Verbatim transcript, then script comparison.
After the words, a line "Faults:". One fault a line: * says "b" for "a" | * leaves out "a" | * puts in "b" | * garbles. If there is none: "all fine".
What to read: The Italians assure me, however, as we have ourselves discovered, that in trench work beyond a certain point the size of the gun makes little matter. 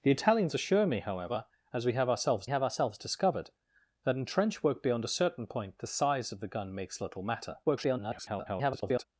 The Italians assure me, however, as we have ourselves have ourselves discovered, that in trench work beyond a certain point the size of the gun makes little matter. [garbled]
Faults:
* puts in "have ourselves"
* garbles